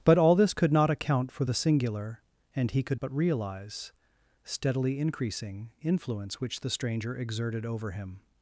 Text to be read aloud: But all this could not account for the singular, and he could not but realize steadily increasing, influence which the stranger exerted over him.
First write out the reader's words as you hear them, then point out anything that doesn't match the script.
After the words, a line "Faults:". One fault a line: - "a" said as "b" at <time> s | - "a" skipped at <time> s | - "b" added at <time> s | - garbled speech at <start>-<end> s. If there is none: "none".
But all this could not account for the singular, and he could but realize steadily increasing, influence which the stranger exerted over him.
Faults:
- "not" skipped at 3.0 s